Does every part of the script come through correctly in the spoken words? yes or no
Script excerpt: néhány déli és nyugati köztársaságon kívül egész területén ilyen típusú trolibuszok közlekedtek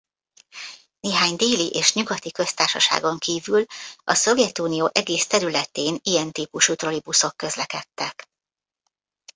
no